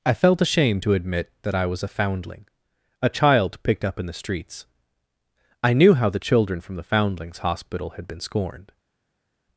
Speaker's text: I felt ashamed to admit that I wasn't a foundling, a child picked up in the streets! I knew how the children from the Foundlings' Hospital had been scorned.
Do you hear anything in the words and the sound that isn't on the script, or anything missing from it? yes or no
yes